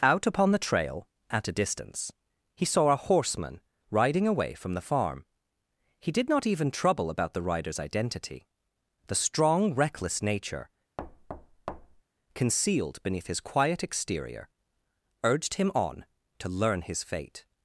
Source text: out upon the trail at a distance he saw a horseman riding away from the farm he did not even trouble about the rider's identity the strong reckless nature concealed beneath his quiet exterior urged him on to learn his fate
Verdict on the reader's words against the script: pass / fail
pass